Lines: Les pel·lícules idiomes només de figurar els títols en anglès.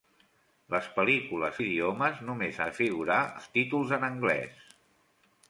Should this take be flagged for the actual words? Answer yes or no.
no